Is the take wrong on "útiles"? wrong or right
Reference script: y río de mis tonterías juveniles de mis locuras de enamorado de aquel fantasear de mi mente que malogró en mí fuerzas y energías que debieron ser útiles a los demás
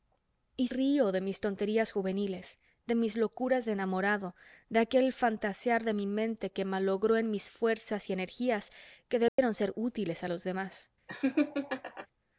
right